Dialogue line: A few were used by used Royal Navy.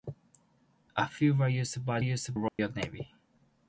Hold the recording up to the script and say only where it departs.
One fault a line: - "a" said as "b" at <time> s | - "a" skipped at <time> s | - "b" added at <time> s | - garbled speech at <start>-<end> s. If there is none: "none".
none